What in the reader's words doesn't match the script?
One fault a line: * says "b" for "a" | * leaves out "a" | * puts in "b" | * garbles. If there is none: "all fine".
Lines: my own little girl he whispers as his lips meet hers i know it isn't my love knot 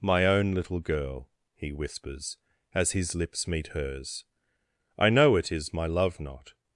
* says "is" for "isn't"